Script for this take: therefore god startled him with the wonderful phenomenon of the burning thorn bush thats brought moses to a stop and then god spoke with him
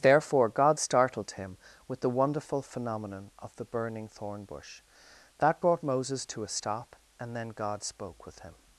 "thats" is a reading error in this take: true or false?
true